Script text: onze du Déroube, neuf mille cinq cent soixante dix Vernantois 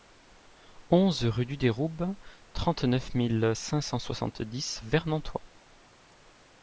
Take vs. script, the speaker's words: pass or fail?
fail